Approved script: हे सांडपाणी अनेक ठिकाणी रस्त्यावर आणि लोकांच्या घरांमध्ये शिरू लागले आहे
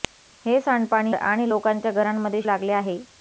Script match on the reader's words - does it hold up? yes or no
no